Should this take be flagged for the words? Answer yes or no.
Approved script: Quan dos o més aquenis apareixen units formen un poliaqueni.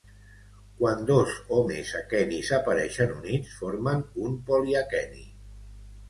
no